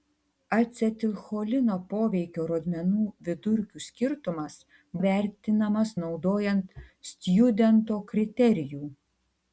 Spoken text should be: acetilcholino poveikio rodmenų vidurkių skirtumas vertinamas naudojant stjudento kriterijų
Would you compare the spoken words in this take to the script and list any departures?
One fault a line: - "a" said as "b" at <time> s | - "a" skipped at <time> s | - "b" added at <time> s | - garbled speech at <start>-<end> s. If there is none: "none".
none